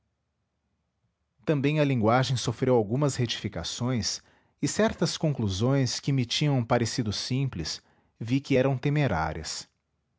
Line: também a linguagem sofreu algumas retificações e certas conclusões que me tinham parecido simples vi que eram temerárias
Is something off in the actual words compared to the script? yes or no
no